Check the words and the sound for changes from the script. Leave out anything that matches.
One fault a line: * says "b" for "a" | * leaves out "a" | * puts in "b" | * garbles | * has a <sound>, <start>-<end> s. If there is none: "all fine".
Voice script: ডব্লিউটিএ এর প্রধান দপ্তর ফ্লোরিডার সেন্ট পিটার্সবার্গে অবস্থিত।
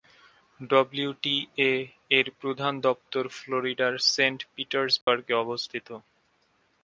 * has a dropout, 5.0-5.1 s